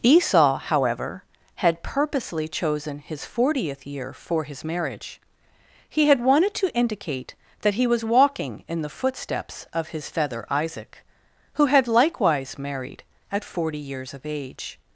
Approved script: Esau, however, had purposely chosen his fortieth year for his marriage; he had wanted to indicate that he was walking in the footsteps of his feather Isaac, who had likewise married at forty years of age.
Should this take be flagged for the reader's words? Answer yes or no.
no